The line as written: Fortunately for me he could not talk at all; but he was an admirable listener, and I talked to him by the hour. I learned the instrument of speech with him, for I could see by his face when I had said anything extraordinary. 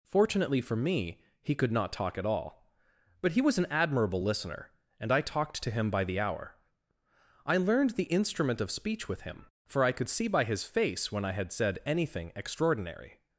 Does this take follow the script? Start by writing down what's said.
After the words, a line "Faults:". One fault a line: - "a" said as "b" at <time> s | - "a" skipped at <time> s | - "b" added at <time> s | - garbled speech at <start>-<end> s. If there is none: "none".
Fortunately for me he could not talk at all; but he was an admirable listener, and I talked to him by the hour. I learned the instrument of speech with him, for I could see by his face when I had said anything extraordinary.
Faults:
none